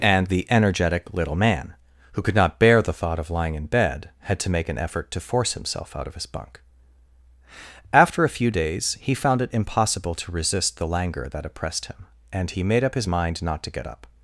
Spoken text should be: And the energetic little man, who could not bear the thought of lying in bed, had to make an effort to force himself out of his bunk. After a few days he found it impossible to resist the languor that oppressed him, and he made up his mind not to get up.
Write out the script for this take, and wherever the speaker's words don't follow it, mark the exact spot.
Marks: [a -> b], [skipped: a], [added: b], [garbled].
And the energetic little man, who could not bear the thought of lying in bed, had to make an effort to force himself out of his bunk. After a few days he found it impossible to resist the languor that oppressed him, and he made up his mind not to get up.